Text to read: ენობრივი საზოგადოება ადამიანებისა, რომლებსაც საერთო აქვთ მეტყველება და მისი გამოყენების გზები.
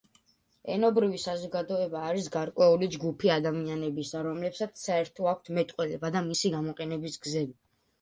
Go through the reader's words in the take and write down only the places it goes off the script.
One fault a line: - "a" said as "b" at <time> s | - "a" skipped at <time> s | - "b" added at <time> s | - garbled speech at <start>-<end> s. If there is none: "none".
- "არის გარკვეული ჯგუფი" added at 2.1 s